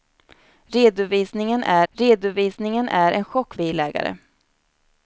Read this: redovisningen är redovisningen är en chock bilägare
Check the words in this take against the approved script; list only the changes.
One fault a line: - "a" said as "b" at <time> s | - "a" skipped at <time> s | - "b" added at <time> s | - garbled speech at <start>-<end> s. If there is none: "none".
none